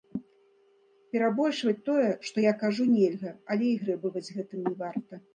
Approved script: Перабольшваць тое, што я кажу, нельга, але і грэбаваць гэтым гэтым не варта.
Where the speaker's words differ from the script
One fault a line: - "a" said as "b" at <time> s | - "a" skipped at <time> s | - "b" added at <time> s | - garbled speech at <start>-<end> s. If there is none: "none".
- "гэтым" skipped at 4.6 s